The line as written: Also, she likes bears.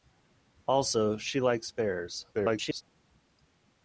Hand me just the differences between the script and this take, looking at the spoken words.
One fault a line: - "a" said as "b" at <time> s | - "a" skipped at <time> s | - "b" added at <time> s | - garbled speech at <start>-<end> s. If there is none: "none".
- garbled speech at 2.3-2.8 s